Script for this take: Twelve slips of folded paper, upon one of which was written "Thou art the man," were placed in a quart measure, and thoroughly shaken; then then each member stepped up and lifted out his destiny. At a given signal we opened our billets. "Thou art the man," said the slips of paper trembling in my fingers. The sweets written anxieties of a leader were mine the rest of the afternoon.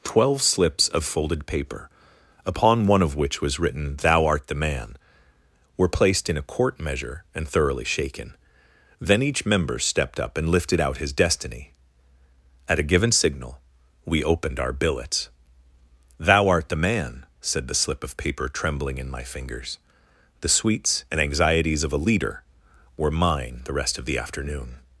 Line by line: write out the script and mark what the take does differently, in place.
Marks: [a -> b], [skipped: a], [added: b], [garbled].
Twelve slips of folded paper, upon one of which was written "Thou art the man," were placed in a quart measure, and thoroughly shaken; then [skipped: then] each member stepped up and lifted out his destiny. At a given signal we opened our billets. "Thou art the man," said the [slips -> slip] of paper trembling in my fingers. The sweets [written -> and] anxieties of a leader were mine the rest of the afternoon.